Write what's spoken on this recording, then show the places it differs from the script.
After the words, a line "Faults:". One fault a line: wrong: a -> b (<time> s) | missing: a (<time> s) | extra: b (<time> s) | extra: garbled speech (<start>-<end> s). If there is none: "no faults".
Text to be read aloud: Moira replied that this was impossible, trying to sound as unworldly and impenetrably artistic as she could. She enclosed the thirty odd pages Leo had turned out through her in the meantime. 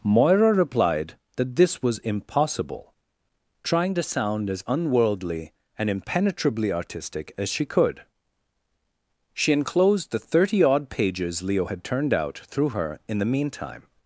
Moira replied that this was impossible, trying to sound as unworldly and impenetrably artistic as she could. She enclosed the thirty odd pages Leo had turned out through her in the meantime.
Faults:
no faults